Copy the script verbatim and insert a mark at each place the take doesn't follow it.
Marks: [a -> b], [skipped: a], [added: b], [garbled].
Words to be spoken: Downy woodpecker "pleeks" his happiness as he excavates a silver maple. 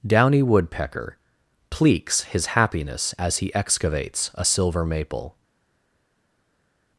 Downy woodpecker "pleeks" his happiness as he excavates a silver maple.